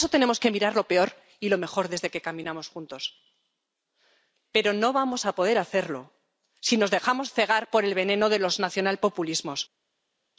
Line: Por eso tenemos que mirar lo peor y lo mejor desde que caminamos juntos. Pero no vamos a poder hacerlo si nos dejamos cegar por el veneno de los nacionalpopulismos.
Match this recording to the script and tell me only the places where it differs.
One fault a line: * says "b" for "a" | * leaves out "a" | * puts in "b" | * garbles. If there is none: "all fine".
all fine